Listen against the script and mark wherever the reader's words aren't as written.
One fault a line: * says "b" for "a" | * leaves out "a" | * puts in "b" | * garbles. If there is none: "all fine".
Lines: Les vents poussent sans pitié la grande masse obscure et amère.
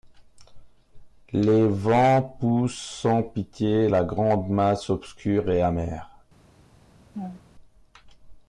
all fine